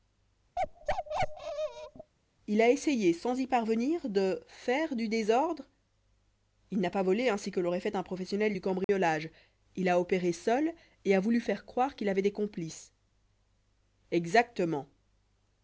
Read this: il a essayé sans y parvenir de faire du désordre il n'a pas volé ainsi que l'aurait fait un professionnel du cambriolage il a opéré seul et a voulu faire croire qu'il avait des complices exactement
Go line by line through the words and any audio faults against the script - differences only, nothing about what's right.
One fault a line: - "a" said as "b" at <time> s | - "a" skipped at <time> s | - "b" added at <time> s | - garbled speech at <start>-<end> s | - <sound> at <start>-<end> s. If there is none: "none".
- bark at 0.6-2.1 s
- dropout at 8.8-8.9 s